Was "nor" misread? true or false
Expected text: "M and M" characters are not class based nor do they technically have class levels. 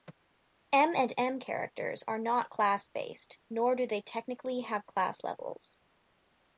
false